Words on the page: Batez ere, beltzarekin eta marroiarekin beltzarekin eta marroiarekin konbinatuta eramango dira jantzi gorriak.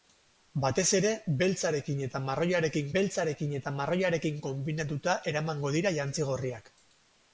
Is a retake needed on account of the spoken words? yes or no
no